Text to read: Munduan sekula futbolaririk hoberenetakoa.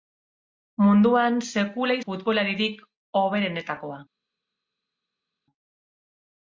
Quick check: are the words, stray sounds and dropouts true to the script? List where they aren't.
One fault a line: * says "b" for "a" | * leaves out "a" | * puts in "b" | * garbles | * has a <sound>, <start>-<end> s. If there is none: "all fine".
all fine